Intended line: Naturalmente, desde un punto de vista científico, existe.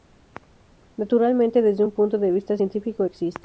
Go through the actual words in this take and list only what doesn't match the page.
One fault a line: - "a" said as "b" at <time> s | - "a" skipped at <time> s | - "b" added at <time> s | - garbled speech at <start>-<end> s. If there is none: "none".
none